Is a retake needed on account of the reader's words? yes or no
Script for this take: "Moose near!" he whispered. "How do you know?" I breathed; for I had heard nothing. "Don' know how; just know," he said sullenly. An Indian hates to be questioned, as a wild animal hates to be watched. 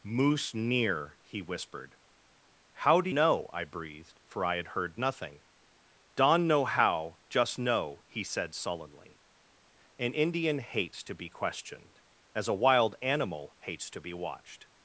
yes